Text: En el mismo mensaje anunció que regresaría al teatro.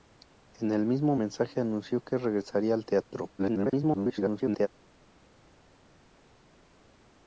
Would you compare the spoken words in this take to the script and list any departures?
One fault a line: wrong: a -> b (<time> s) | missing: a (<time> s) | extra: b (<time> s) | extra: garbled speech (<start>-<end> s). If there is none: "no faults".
extra: garbled speech (3.4-4.7 s)